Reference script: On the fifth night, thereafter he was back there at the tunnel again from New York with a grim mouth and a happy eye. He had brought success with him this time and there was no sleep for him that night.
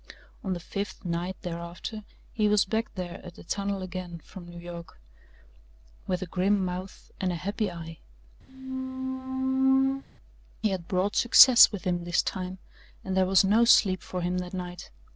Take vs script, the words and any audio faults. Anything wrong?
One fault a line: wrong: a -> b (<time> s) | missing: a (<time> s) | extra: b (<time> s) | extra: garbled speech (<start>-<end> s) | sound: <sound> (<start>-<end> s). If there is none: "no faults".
sound: squeak (8.5-10.0 s)